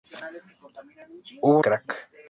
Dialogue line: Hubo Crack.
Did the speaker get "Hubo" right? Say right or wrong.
right